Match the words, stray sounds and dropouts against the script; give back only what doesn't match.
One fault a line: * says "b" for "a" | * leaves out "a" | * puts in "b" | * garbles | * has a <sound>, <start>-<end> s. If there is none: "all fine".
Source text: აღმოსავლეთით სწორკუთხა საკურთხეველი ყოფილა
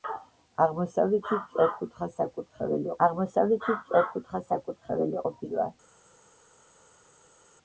* puts in "აღმოსავლეთით სწორკუთხა საკურთხეველი"